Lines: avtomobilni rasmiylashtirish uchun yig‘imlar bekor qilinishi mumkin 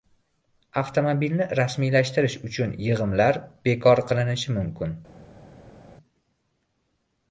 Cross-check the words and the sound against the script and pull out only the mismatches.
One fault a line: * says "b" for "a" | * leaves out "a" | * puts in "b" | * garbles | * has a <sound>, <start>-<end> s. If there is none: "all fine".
all fine